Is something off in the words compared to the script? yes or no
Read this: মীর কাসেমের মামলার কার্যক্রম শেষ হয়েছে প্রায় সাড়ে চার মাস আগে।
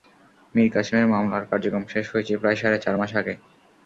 no